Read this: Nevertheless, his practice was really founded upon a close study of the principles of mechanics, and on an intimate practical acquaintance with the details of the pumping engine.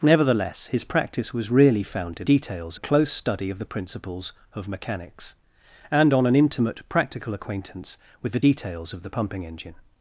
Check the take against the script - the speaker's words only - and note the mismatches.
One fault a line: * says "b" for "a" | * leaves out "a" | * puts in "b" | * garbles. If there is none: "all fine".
* says "details" for "upon"